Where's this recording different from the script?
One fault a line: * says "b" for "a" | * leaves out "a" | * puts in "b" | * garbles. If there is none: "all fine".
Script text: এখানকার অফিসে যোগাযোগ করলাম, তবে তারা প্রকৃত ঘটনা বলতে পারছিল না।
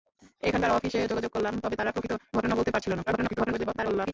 * garbles